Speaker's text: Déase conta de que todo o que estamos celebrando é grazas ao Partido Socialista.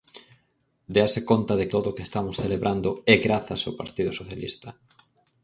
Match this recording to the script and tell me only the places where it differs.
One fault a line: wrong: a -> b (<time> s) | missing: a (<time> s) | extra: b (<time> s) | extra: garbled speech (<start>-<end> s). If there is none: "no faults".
missing: que (1.6 s)